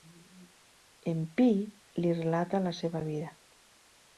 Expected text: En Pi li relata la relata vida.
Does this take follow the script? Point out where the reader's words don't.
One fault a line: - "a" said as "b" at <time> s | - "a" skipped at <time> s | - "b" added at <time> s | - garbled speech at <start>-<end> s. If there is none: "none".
- "relata" said as "seva" at 2.8 s